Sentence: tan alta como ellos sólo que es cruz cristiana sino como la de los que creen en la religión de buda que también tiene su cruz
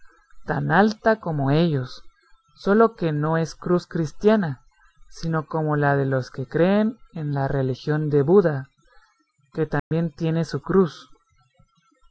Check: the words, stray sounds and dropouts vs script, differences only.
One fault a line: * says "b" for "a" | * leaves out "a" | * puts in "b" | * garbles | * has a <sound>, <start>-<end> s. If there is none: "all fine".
* puts in "no"
* has a dropout, 9.8-9.9 s